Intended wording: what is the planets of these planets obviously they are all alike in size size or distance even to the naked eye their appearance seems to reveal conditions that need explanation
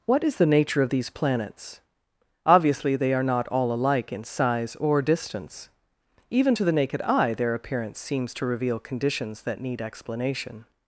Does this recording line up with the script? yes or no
no